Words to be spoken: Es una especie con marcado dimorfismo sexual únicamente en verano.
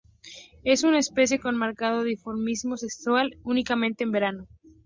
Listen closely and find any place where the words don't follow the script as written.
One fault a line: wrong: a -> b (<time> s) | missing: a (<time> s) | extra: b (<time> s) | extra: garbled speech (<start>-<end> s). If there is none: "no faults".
no faults